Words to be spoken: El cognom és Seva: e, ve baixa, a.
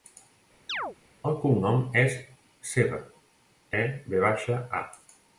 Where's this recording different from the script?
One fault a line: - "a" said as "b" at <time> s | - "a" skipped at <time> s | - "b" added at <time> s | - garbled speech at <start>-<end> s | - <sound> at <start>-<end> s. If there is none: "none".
- chirp at 0.7-1.0 s